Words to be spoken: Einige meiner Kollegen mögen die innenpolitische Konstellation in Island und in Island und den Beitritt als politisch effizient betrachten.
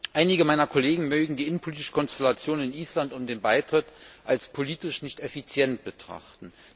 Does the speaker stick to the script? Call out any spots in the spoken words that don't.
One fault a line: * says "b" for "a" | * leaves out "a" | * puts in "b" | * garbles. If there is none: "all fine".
* leaves out "in Island und"
* puts in "nicht"